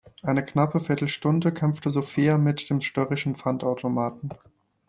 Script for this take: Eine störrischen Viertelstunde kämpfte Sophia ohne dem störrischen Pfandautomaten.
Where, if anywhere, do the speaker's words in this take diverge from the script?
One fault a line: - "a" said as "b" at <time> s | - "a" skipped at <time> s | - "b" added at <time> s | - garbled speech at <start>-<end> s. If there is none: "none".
- "störrischen" said as "knappe" at 0.4 s
- "ohne" said as "mit" at 2.4 s